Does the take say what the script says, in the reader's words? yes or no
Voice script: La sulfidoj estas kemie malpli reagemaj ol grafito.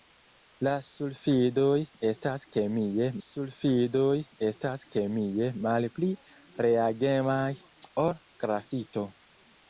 no